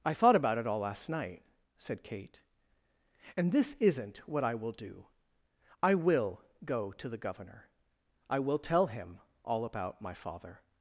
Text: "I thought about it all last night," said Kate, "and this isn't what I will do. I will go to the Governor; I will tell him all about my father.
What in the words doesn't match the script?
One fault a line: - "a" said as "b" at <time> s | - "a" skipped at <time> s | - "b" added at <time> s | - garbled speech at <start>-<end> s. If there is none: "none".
none